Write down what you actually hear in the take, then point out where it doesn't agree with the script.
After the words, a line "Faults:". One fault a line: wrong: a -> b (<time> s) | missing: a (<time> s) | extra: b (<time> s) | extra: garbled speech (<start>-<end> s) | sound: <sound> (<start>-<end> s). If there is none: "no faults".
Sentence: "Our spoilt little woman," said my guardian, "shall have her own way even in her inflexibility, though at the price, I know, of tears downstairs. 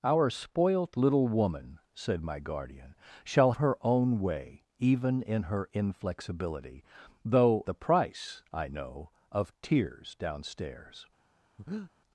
"Our spoilt little woman," said my guardian, "shall her own way even in her inflexibility, though the price, I know, of tears downstairs.
Faults:
missing: have (3.5 s)
missing: at (7.6 s)
sound: breath (11.6-11.9 s)